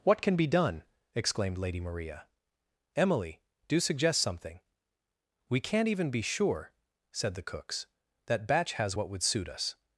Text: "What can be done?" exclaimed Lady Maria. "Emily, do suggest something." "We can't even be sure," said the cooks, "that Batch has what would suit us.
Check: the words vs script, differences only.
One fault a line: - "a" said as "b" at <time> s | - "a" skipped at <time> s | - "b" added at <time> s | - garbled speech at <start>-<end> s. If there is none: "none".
none